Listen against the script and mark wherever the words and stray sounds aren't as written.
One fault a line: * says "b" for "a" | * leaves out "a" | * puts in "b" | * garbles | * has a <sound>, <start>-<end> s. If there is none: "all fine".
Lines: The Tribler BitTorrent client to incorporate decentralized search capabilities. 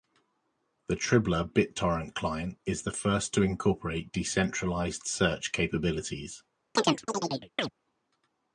* puts in "is the first"
* has a chirp, 6.8-7.7 s